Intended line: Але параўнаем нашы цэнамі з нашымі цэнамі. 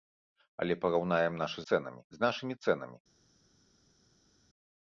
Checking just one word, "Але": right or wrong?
right